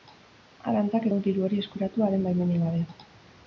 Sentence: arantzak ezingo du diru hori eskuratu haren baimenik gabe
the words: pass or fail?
fail